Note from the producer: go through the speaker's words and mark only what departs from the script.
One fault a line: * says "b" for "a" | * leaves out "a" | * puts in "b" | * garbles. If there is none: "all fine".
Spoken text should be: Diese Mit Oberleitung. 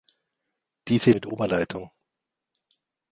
all fine